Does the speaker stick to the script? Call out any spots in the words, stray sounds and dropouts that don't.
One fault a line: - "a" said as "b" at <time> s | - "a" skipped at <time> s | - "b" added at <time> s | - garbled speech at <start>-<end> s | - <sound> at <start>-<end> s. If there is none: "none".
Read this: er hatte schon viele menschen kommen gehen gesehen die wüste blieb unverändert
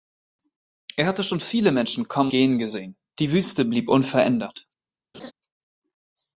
- laugh at 5.1-5.3 s